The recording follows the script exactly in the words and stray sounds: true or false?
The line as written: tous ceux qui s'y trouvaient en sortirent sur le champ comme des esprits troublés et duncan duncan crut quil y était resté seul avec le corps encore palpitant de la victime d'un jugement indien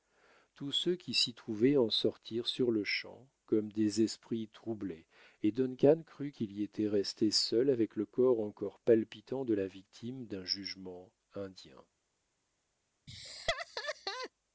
false